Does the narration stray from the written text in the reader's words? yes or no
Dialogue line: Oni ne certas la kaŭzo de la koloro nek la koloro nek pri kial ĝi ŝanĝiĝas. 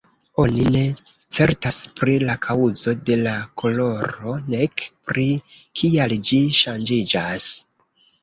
yes